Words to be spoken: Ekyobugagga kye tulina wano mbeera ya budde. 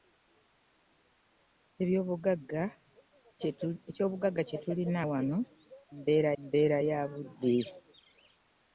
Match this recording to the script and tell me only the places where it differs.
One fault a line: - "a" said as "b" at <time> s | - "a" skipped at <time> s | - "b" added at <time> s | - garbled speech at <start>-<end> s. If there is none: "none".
- "mbeera" added at 6.4 s